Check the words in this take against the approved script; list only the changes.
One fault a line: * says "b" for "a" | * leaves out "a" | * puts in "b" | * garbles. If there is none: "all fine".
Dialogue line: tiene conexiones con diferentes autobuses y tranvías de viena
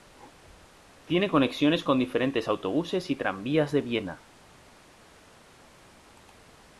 all fine